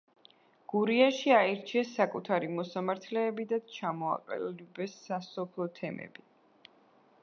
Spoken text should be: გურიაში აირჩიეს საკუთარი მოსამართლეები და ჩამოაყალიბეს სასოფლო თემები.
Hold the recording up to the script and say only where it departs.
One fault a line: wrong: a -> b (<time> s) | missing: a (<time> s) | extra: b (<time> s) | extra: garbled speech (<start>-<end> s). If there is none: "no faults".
no faults